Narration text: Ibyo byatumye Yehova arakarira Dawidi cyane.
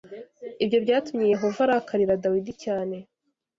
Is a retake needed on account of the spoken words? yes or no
no